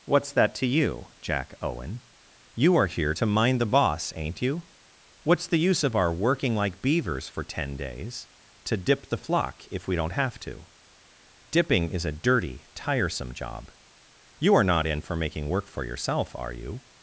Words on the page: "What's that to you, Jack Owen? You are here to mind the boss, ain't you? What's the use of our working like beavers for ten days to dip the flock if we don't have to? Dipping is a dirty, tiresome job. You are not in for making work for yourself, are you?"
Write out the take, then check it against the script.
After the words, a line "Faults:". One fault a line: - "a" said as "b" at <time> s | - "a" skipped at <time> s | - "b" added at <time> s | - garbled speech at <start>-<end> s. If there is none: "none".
"What's that to you, Jack Owen? You are here to mind the boss, ain't you? What's the use of our working like beavers for ten days to dip the flock if we don't have to? Dipping is a dirty, tiresome job. You are not in for making work for yourself, are you?"
Faults:
none